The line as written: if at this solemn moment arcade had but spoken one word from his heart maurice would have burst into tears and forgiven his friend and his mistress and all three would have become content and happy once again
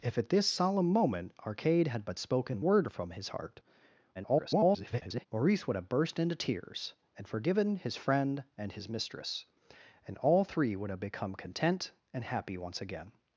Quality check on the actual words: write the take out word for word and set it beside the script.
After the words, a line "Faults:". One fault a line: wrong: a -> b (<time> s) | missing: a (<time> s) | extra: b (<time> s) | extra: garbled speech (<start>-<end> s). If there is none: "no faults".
if at this solemn moment arcade had but spoken word from his heart [garbled] maurice would have burst into tears and forgiven his friend and his mistress and all three would have become content and happy once again
Faults:
missing: one (2.6 s)
extra: garbled speech (4.1-5.3 s)